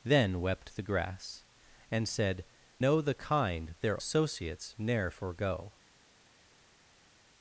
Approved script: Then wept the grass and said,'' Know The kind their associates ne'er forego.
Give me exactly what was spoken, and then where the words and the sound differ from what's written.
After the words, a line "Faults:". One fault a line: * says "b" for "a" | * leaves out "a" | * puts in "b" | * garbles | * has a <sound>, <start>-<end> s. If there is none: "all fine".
Then wept the grass and said,'' Know The kind their associates ne'er forego.
Faults:
all fine